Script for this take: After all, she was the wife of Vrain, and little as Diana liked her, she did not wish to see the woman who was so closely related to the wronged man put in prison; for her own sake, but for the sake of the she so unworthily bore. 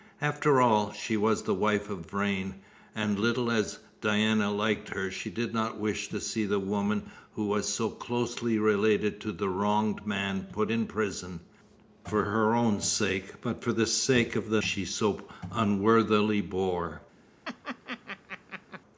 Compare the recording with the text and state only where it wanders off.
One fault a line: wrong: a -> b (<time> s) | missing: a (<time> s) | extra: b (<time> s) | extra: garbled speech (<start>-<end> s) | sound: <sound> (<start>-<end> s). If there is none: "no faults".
sound: laugh (17.4-18.8 s)